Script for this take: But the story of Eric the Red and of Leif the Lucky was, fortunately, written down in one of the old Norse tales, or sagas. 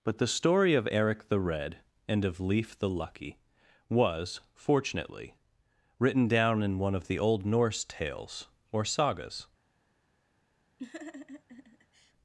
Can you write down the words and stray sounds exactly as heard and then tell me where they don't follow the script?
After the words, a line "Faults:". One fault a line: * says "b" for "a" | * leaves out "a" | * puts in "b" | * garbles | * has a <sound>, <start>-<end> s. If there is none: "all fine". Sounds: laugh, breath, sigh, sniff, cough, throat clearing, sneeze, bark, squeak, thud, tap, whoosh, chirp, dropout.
But the story of Eric the Red and of Leif the Lucky was, fortunately, written down in one of the old Norse tales, or sagas.
Faults:
* has a laugh, 10.8-12.1 s